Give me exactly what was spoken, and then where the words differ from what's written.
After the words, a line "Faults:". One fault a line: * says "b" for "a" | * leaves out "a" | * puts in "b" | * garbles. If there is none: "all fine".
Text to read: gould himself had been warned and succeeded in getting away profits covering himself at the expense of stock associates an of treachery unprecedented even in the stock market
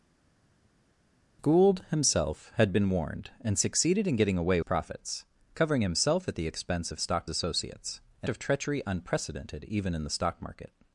gould himself had been warned and succeeded in getting away profits covering himself at the expense of stock associates an of treachery unprecedented even in the stock market
Faults:
all fine